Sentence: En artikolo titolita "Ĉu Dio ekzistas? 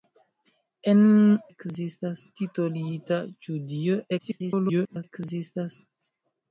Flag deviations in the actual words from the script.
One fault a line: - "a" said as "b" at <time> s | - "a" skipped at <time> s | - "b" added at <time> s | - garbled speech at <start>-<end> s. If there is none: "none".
- "artikolo" said as "ekzistas" at 1.5 s
- garbled speech at 4.2-5.0 s